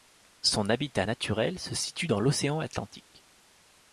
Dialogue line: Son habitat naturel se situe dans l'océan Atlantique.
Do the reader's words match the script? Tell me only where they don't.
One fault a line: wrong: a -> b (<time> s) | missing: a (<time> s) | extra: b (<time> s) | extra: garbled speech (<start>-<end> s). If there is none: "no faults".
no faults